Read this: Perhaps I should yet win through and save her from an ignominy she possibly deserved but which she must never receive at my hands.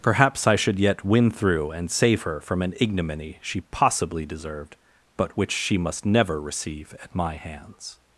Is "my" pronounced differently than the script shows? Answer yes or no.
no